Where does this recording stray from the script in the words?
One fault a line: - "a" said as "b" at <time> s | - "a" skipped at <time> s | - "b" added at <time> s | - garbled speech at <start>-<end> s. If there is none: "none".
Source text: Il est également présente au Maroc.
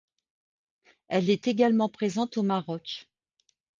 - "Il" said as "Elle" at 1.1 s